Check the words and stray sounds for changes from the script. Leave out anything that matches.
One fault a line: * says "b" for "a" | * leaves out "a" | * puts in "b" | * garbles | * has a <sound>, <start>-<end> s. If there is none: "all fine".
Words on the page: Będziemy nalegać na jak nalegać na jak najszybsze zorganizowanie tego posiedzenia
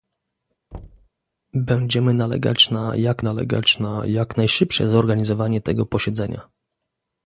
* has a thud, 0.7-1.1 s